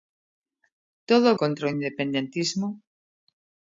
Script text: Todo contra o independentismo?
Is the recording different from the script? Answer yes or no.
no